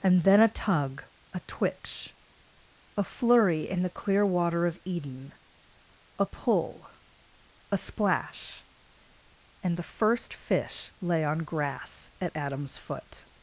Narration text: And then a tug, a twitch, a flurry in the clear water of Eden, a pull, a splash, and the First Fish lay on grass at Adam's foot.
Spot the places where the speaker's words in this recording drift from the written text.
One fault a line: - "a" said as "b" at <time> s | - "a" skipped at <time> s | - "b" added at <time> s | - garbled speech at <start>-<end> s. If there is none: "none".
none